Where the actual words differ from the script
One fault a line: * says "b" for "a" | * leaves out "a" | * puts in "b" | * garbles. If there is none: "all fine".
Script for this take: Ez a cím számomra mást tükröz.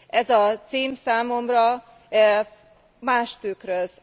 all fine